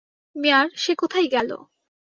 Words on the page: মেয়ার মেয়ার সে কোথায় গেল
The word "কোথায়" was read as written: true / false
true